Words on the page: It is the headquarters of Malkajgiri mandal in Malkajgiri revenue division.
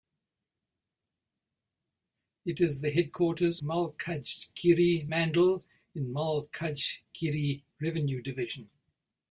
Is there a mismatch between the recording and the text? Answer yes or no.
yes